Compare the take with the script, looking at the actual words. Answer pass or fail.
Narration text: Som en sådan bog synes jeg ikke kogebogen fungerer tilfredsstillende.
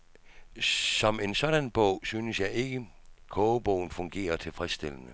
pass